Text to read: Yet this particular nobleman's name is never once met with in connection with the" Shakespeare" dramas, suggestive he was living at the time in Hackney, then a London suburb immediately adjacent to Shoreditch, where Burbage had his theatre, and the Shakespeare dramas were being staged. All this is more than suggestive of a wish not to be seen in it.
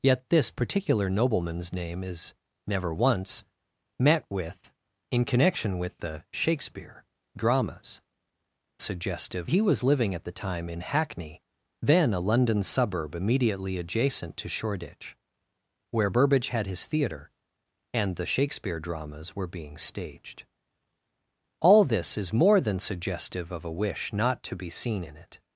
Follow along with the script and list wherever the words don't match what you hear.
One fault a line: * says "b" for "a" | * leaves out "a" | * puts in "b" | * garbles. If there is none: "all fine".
all fine